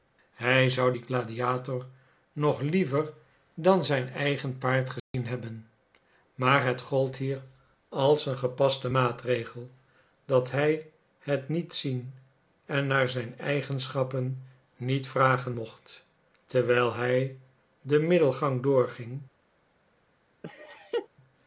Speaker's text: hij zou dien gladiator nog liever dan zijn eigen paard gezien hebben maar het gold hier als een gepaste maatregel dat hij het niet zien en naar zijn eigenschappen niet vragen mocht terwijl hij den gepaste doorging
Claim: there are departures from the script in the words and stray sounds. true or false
true